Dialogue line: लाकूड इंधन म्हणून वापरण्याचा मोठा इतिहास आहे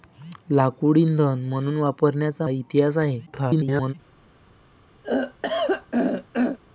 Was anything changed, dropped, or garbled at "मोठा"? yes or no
yes